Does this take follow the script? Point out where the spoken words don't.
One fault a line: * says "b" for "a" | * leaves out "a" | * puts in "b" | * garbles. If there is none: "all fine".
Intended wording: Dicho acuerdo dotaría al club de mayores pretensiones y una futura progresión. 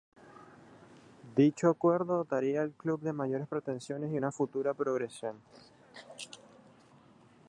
all fine